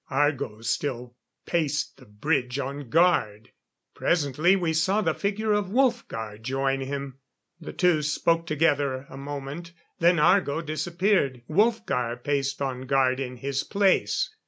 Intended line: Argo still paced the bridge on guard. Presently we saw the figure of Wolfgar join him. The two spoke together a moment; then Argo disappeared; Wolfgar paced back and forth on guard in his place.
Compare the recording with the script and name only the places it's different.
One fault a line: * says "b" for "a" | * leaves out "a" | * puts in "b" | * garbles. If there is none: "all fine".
* leaves out "back and forth"